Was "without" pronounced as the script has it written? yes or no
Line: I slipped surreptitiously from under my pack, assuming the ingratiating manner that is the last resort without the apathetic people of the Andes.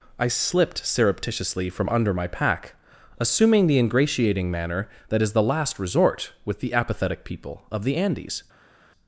no